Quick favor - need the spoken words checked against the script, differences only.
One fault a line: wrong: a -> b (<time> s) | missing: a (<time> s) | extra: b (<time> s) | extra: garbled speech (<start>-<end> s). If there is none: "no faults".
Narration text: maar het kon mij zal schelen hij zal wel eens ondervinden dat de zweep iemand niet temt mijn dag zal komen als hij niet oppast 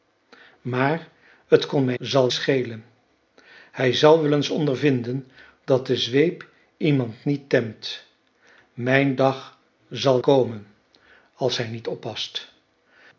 no faults